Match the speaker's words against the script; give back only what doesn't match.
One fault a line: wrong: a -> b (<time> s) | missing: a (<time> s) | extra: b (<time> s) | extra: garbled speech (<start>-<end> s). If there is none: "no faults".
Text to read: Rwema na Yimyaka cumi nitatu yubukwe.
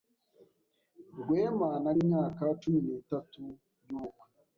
no faults